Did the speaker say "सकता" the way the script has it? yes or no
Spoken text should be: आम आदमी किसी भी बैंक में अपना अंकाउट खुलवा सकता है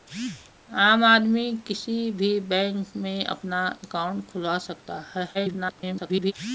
yes